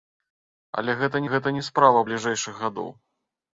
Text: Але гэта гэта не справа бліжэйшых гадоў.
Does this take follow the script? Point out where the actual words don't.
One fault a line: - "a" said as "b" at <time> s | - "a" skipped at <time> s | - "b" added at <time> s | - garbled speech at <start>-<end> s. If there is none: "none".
none